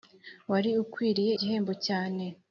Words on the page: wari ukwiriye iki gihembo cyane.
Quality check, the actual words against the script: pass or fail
fail